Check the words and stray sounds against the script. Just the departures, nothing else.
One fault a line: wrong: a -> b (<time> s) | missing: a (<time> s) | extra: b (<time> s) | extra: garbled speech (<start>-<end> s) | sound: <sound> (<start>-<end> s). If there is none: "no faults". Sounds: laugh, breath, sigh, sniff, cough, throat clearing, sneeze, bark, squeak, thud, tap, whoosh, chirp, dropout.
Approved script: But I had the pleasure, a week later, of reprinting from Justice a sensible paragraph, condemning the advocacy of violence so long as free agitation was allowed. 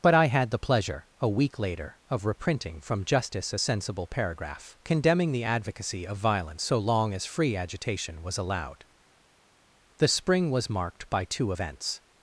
extra: The spring was marked by two events (10.0 s)